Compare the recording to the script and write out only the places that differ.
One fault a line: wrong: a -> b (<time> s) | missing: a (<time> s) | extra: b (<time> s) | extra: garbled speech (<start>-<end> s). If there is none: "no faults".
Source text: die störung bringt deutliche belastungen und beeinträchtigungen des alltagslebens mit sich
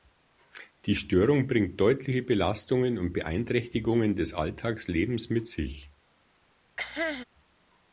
no faults